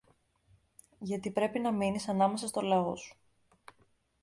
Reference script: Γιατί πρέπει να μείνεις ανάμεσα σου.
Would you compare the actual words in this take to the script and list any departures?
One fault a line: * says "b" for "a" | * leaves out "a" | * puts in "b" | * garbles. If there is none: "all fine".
* puts in "στο λαό"